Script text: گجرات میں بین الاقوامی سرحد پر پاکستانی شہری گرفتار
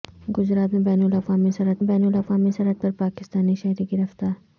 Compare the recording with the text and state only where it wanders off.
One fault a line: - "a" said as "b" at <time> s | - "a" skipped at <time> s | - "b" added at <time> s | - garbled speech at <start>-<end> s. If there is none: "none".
- "بین الاقوامی سرحد" added at 1.8 s